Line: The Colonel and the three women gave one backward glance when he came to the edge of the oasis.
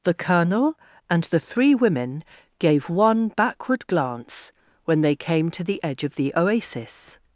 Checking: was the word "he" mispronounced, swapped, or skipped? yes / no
yes